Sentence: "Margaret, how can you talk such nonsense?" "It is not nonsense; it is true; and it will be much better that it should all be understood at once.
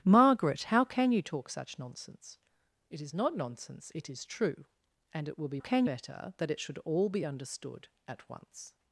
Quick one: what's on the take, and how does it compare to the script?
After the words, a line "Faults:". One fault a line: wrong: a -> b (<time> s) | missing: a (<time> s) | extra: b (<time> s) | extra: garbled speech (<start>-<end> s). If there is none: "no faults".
"Margaret, how can you talk such nonsense?" "It is not nonsense; it is true; and it will be can better that it should all be understood at once.
Faults:
wrong: much -> can (5.6 s)